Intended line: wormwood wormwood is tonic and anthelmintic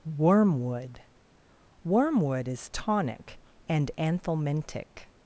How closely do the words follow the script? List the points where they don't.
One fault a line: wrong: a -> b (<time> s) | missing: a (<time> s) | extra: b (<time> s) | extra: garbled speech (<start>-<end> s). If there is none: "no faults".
no faults